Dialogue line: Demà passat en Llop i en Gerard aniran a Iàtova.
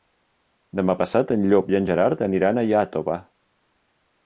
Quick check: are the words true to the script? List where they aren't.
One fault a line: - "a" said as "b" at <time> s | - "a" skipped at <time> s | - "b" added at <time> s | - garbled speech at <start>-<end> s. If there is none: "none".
none